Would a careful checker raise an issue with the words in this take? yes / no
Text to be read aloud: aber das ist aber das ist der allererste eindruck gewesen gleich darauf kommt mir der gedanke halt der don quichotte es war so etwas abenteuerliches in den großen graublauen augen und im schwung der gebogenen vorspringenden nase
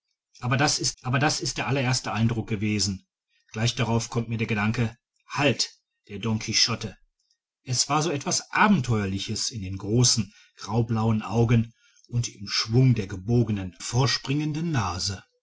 no